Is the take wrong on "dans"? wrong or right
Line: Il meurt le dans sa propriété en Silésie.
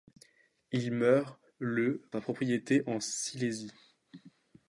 wrong